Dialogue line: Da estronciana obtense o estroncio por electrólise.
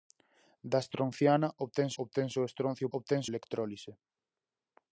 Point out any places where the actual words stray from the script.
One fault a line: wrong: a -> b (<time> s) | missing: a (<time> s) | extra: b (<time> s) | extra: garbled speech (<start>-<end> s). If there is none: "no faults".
extra: obtense (2.0 s)
wrong: por -> obtense (3.0 s)